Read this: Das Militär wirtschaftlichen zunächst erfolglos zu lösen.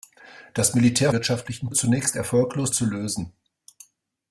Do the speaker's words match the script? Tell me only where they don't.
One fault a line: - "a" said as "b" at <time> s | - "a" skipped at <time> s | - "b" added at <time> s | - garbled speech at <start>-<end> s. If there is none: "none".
none